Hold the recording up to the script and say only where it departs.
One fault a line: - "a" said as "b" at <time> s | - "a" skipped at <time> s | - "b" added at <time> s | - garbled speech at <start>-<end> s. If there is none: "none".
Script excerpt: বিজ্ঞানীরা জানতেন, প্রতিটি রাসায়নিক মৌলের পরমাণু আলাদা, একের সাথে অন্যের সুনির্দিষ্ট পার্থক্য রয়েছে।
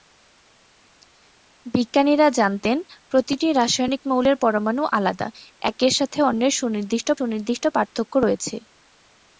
- "সুনির্দিষ্ট" added at 7.2 s